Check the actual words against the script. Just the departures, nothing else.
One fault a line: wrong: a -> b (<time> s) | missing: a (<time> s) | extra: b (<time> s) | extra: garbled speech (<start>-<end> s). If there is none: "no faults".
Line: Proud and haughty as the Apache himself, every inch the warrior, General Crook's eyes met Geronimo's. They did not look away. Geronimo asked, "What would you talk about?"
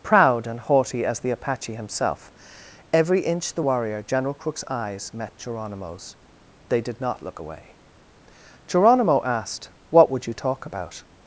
no faults